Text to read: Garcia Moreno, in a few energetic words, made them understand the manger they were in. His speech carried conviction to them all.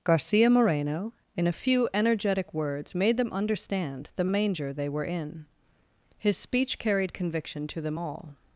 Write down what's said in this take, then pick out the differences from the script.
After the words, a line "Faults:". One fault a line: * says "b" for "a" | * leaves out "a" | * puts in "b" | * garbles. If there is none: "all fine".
Garcia Moreno, in a few energetic words, made them understand the manger they were in. His speech carried conviction to them all.
Faults:
all fine